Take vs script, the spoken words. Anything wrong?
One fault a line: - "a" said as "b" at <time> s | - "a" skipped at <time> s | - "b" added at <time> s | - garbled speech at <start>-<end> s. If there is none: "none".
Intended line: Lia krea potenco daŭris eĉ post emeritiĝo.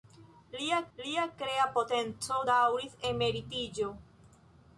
- "lia" added at 1.0 s
- "eĉ post" skipped at 2.9 s